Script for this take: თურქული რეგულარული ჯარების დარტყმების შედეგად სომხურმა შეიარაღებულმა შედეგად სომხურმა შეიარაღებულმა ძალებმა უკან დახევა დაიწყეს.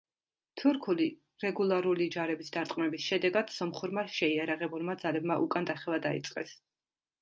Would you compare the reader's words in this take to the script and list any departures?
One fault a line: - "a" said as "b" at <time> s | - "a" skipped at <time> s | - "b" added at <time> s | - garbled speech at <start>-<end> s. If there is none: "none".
- "შედეგად სომხურმა შეიარაღებულმა" skipped at 5.0 s